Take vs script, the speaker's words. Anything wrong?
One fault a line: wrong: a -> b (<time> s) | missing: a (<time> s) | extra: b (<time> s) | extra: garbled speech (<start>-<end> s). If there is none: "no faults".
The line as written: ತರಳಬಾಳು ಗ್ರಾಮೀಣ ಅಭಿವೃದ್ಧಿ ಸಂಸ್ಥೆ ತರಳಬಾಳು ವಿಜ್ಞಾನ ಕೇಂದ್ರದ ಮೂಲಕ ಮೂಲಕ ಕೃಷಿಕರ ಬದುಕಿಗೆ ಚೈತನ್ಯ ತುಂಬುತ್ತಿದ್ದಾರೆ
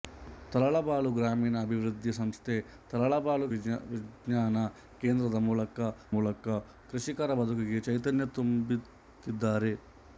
no faults